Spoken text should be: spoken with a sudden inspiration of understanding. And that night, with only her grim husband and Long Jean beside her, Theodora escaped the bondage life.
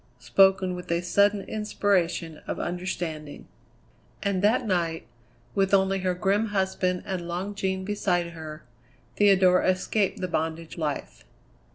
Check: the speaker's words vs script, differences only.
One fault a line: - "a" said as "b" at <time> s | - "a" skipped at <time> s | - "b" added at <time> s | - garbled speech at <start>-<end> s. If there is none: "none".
none